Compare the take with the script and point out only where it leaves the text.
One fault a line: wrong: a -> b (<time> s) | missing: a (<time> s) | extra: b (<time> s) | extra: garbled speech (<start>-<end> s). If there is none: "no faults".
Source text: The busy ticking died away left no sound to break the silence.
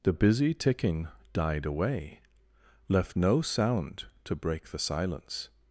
no faults